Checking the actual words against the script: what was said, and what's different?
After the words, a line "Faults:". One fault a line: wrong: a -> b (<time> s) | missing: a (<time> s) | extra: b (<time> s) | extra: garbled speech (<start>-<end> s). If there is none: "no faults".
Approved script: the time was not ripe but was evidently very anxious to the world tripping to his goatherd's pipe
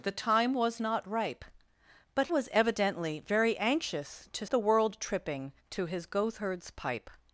the time was not ripe but was evidently very anxious to the world tripping to his goatherd's pipe
Faults:
no faults